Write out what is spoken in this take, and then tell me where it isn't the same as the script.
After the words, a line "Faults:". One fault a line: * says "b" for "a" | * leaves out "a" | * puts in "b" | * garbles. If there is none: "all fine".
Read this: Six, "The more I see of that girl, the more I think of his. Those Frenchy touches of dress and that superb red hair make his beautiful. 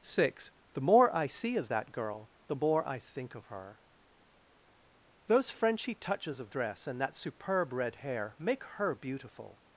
Six, "The more I see of that girl, the more I think of her. Those Frenchy touches of dress and that superb red hair make her beautiful.
Faults:
* says "her" for "his"
* says "her" for "his"